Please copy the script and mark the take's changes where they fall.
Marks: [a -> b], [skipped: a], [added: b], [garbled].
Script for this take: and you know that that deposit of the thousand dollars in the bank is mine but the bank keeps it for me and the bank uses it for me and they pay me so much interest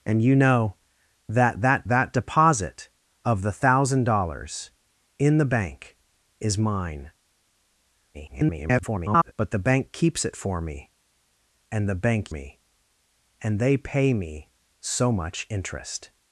and you know that that [added: that] deposit of the thousand dollars in the bank is mine [garbled] but the bank keeps it for me and the bank [skipped: uses it for] me and they pay me so much interest